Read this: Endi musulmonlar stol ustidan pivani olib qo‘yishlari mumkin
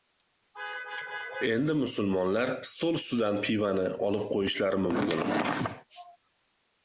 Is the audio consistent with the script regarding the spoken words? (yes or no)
yes